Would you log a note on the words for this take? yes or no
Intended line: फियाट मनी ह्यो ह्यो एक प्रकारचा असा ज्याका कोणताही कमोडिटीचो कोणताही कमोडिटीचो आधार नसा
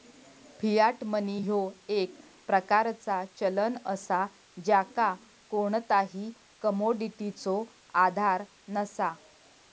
yes